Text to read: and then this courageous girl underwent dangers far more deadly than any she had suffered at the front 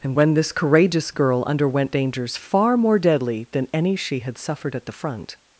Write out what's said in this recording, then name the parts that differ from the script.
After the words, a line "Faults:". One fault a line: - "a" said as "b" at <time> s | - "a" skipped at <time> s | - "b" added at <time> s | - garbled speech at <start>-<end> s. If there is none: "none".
and when this courageous girl underwent dangers far more deadly than any she had suffered at the front
Faults:
- "then" said as "when" at 0.1 s